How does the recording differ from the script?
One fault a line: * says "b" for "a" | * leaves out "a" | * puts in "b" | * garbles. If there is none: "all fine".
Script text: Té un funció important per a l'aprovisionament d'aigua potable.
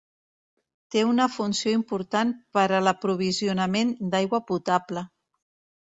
* says "una" for "un"